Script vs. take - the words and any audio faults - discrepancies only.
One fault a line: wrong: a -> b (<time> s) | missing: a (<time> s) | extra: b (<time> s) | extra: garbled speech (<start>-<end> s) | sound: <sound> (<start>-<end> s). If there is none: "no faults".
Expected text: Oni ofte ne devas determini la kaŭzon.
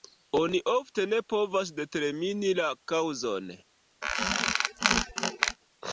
wrong: devas -> povas (1.3 s)
sound: squeak (4.0-5.6 s)